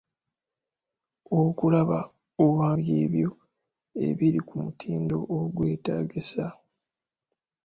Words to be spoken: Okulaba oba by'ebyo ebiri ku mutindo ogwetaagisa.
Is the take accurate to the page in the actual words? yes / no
yes